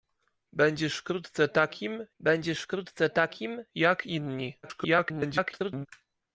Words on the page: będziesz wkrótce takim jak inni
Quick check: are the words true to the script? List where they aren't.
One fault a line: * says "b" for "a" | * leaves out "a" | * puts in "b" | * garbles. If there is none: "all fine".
* puts in "będziesz wkrótce takim"
* garbles